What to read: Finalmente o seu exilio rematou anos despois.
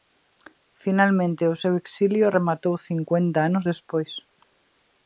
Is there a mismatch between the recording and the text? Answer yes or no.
yes